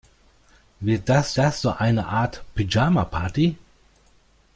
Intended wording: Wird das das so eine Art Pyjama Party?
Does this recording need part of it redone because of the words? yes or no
no